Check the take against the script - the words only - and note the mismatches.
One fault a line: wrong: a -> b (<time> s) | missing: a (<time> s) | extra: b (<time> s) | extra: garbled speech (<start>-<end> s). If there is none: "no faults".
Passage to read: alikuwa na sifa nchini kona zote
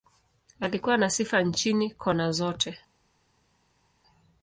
no faults